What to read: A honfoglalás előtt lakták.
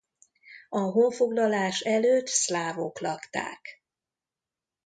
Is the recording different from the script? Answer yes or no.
yes